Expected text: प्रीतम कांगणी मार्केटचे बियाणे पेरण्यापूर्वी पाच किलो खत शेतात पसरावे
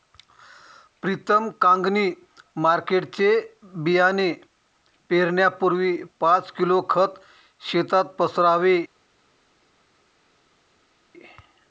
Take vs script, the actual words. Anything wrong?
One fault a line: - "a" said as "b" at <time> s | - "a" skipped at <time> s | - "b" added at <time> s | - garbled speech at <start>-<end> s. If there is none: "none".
none